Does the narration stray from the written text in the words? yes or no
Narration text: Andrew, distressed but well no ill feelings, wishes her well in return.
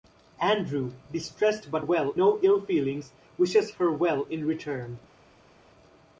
no